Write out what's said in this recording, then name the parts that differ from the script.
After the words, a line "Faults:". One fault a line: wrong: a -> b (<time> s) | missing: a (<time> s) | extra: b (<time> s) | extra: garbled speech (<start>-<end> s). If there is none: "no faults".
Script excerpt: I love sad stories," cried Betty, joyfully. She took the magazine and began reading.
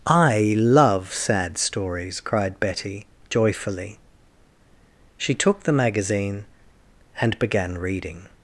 I love sad stories," cried Betty, joyfully. She took the magazine and began reading.
Faults:
no faults